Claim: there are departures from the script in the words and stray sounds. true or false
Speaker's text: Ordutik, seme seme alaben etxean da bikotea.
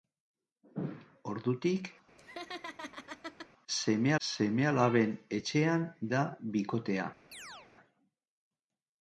true